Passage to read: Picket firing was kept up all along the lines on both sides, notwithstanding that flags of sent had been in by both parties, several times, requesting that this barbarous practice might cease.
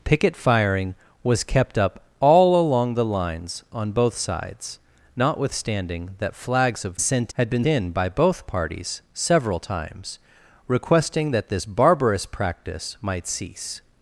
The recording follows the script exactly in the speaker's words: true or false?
true